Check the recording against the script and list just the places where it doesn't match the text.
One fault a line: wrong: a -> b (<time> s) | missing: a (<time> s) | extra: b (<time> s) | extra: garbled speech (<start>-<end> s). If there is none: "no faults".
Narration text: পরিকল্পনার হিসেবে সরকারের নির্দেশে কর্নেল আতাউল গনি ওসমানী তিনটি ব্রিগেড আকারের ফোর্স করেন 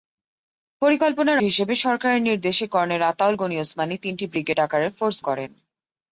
no faults